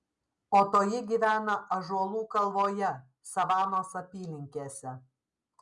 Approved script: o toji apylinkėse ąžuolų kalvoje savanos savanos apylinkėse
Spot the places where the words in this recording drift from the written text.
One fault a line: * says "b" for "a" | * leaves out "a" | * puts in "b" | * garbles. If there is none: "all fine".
* says "gyvena" for "apylinkėse"
* leaves out "savanos"